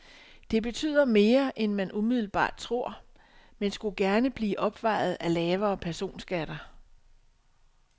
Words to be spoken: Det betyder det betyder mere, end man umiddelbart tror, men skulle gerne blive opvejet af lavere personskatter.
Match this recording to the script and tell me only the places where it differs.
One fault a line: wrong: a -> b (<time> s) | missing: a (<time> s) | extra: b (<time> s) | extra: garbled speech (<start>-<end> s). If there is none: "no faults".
missing: det betyder (1.1 s)